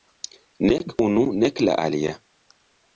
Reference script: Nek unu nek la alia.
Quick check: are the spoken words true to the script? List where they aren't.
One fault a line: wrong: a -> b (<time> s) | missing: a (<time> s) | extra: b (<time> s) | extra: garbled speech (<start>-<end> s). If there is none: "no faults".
no faults